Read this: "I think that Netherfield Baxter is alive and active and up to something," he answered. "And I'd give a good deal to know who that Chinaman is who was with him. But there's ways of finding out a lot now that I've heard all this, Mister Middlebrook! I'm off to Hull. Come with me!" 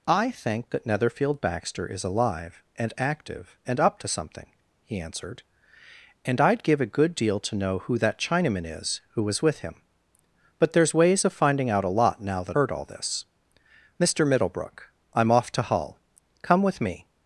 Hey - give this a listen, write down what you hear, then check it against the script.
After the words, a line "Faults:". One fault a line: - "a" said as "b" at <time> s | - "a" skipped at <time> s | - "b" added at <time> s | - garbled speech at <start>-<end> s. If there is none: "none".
"I think that Netherfield Baxter is alive and active and up to something," he answered. "And I'd give a good deal to know who that Chinaman is who was with him. But there's ways of finding out a lot now that Heard all this, Mister Middlebrook! I'm off to Hull. Come with me!"
Faults:
- "I've" skipped at 12.6 s